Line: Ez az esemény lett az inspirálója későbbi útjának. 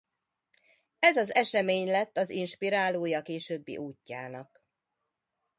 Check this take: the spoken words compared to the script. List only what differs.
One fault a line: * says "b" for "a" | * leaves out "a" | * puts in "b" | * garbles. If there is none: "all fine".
all fine